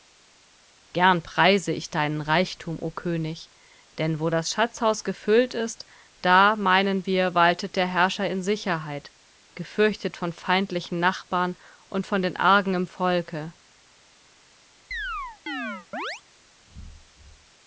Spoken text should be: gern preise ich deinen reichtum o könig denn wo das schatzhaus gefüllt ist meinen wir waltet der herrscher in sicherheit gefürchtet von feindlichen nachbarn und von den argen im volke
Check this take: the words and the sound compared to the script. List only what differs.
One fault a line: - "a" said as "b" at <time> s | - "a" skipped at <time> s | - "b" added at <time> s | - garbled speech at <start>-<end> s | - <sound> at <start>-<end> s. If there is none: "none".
- "da" added at 6.2 s
- chirp at 14.9-16.2 s